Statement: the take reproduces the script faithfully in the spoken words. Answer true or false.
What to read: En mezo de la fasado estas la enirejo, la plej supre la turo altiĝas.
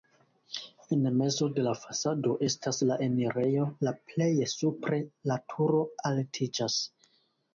true